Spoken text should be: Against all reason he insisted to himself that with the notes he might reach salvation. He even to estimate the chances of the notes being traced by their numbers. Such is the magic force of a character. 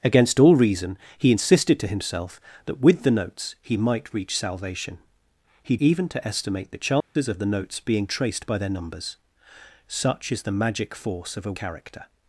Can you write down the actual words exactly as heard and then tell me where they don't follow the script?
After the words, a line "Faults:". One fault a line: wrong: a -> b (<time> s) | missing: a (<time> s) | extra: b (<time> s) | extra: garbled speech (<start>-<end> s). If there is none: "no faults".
Against all reason he insisted to himself that with the notes he might reach salvation. He even to estimate the chances of the notes being traced by their numbers. Such is the magic force of a character.
Faults:
no faults